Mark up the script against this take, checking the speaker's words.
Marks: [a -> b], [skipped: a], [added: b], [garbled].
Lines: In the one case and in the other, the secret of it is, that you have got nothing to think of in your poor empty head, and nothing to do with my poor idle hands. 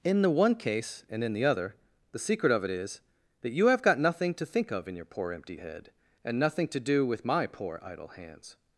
In the one case and in the other, the secret of it is, that you have got nothing to think of in your poor empty head, and nothing to do with my poor idle hands.